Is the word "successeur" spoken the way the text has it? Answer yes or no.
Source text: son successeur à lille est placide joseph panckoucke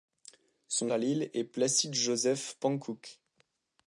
no